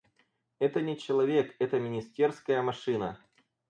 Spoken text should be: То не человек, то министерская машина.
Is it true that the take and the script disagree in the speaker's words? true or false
true